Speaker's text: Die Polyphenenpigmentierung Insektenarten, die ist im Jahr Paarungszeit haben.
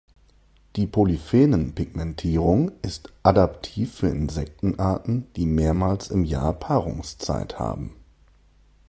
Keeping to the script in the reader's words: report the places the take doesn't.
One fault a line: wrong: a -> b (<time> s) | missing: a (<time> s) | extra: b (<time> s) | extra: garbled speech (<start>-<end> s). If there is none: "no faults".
extra: ist adaptiv für (2.8 s)
wrong: ist -> mehrmals (5.5 s)